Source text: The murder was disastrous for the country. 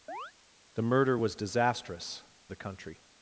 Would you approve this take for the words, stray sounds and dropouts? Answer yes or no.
no